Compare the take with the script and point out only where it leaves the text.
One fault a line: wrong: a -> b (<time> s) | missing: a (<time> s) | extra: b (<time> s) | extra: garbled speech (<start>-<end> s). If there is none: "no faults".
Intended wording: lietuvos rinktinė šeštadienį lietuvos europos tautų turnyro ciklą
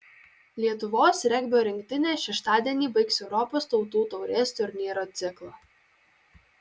extra: regbio (1.3 s)
wrong: lietuvos -> baigs (3.0 s)
extra: taurės (4.2 s)